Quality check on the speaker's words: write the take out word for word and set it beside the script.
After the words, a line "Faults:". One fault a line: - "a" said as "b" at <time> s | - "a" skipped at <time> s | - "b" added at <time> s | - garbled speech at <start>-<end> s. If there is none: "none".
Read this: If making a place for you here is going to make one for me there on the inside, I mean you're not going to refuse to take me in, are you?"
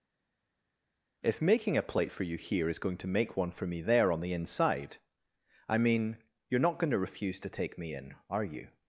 If making a plate for you here is going to make one for me there on the inside, I mean you're not going to refuse to take me in, are you?"
Faults:
- "place" said as "plate" at 1.8 s